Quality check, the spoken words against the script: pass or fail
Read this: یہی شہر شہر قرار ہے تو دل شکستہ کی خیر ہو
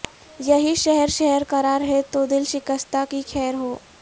pass